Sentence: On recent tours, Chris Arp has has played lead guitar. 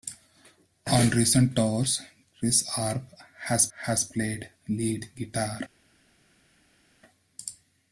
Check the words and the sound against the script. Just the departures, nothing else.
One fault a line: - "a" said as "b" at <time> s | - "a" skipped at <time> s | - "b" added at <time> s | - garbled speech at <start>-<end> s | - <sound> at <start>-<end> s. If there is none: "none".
none